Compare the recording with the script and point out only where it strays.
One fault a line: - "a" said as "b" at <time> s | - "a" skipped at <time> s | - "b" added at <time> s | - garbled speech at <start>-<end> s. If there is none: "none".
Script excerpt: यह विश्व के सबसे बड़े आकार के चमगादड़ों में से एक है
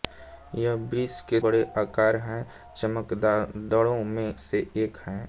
- "सबसे" skipped at 1.4 s